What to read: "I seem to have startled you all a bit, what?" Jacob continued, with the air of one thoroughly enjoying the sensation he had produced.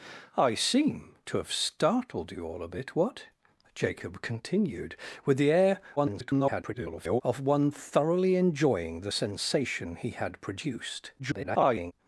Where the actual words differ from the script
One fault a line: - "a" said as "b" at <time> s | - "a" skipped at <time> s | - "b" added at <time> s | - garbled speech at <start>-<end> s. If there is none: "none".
- garbled speech at 6.0-7.2 s
- garbled speech at 11.2-11.9 s